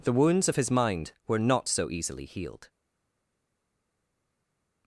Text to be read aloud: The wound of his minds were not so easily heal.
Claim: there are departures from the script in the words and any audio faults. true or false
true